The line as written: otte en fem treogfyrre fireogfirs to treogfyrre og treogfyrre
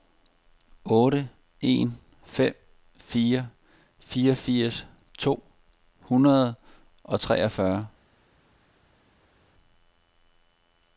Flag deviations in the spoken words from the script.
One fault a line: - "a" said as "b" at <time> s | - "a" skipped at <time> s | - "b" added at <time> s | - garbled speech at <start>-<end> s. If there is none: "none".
- "treogfyrre" said as "fire" at 3.0 s
- "treogfyrre" said as "hundrede" at 6.0 s